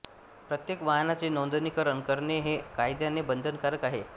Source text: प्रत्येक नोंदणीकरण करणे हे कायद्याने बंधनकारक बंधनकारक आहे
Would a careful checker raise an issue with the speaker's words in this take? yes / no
yes